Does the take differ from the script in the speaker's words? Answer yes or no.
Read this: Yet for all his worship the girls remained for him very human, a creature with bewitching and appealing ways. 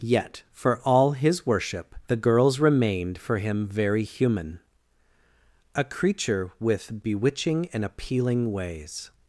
no